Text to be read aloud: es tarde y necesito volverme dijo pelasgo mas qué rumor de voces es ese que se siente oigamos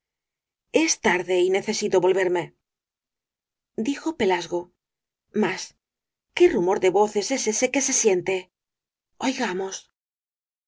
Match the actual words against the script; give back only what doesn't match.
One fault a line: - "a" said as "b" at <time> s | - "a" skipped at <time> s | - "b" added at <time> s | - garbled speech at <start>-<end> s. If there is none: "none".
none